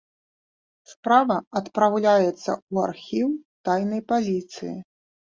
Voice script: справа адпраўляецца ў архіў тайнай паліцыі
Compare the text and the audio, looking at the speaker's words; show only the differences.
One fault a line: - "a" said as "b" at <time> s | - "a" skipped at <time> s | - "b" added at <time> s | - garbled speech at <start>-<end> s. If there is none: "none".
none